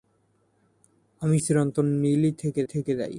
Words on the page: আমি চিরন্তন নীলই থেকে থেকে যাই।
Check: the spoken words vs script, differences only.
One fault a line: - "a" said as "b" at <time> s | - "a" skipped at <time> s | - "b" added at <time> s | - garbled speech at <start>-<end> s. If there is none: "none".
none